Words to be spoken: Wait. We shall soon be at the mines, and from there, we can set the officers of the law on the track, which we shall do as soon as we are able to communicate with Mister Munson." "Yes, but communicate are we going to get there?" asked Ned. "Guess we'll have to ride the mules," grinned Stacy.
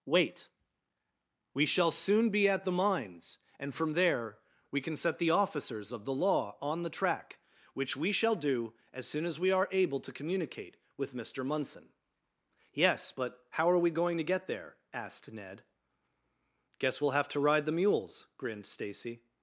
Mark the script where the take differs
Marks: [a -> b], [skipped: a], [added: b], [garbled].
Wait. We shall soon be at the mines, and from there, we can set the officers of the law on the track, which we shall do as soon as we are able to communicate with Mister Munson." "Yes, but [communicate -> how] are we going to get there?" asked Ned. "Guess we'll have to ride the mules," grinned Stacy.